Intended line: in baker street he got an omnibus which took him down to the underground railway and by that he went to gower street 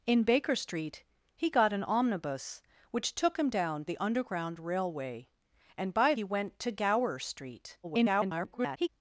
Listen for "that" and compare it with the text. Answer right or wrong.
wrong